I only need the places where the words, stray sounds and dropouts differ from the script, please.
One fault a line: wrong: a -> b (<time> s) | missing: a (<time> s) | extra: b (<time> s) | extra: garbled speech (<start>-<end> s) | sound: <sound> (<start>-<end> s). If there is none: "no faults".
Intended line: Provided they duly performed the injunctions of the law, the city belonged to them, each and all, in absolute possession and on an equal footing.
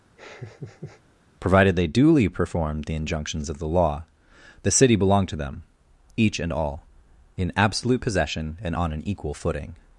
sound: laugh (0.2-1.0 s)